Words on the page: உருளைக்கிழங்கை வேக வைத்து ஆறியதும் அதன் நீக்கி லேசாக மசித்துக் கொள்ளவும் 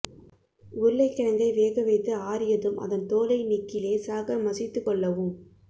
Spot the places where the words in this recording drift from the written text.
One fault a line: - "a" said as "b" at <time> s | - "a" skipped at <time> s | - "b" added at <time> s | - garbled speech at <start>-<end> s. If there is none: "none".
- "தோலை" added at 3.1 s